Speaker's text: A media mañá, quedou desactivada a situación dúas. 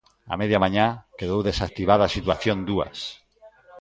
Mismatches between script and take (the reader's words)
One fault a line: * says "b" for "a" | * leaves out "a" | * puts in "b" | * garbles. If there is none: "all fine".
all fine